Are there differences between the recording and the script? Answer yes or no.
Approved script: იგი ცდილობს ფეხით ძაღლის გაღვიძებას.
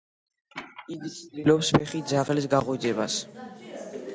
no